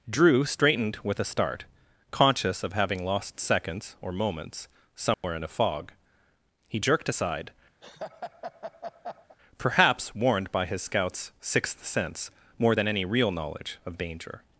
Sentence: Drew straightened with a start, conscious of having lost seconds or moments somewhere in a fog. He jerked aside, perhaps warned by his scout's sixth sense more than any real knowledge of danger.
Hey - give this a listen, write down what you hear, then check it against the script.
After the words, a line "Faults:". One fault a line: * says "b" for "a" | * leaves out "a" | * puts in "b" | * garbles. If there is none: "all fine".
Drew straightened with a start, conscious of having lost seconds or moments somewhere in a fog. He jerked aside, perhaps warned by his scout's sixth sense more than any real knowledge of danger.
Faults:
all fine